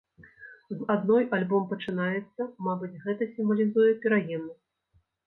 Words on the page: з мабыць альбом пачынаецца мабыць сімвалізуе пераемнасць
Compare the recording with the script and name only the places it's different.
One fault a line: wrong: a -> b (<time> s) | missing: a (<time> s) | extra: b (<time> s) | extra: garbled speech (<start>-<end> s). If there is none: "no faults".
wrong: мабыць -> адной (0.9 s)
extra: гэта (3.1 s)